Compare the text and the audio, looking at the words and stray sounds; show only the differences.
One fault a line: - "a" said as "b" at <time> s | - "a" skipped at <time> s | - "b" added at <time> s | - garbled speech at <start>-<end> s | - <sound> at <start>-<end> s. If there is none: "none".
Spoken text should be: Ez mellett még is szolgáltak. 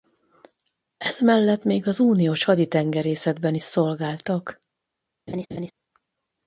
- "az uniós haditengerészetben" added at 1.9 s
- laugh at 5.3-5.7 s